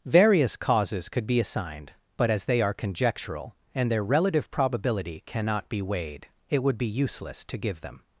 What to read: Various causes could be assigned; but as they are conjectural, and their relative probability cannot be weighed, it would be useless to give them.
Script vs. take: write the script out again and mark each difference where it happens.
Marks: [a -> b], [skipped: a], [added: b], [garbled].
Various causes could be assigned; but as they are conjectural, and their relative probability cannot be weighed, it would be useless to give them.